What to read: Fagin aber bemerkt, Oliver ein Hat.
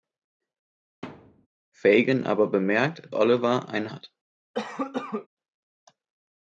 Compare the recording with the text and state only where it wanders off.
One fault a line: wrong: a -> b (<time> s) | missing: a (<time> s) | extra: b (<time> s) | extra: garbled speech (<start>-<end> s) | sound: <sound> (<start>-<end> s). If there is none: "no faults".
sound: thud (1.0-1.5 s)
sound: cough (4.5-5.3 s)